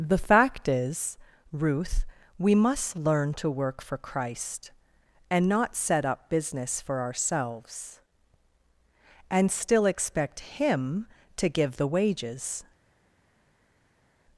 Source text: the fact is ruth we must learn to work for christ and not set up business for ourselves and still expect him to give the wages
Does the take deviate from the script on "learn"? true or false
false